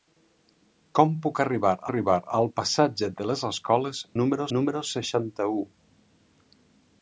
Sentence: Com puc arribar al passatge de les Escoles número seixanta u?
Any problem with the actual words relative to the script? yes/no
yes